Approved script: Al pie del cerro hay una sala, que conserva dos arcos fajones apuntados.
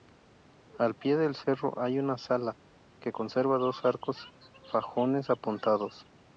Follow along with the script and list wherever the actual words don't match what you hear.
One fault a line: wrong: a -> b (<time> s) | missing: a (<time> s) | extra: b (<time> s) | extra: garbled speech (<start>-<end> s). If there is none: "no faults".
no faults